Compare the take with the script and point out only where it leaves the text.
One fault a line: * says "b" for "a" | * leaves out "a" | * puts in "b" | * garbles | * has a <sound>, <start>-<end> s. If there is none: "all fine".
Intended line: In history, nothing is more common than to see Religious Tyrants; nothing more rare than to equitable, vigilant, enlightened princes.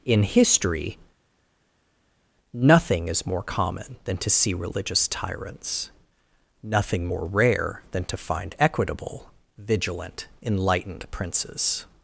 * puts in "find"